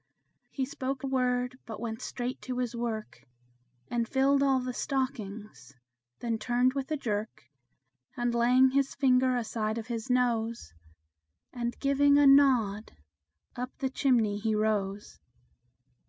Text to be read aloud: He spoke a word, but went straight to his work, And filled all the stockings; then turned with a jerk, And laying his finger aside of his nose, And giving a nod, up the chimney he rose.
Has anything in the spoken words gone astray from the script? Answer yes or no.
no